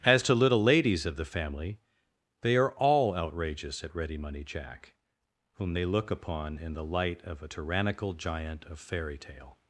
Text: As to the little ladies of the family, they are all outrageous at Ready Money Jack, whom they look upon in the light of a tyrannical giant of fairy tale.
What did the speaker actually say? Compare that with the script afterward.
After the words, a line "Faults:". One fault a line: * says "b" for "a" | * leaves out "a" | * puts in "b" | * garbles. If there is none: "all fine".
As to little ladies of the family, they are all outrageous at Ready Money Jack, whom they look upon in the light of a tyrannical giant of fairy tale.
Faults:
* leaves out "the"